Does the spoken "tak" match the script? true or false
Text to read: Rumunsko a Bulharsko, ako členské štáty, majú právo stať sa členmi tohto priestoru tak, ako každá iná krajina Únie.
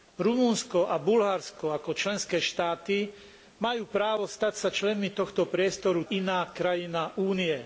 false